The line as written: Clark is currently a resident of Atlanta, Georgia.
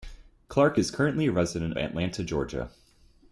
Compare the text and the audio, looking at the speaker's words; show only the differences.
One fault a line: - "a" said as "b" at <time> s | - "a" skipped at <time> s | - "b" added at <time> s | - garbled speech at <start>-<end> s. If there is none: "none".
- "of" skipped at 1.8 s